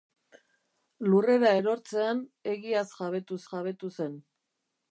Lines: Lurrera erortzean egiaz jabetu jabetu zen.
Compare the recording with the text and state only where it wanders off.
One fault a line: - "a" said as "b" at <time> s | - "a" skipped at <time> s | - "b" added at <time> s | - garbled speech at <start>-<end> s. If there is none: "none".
none